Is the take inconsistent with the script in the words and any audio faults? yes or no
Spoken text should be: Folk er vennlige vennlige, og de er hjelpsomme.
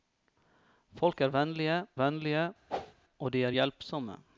yes